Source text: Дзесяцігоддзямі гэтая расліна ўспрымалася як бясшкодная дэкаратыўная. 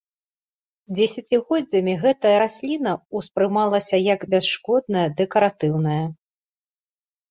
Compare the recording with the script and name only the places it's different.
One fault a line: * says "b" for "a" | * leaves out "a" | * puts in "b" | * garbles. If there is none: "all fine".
all fine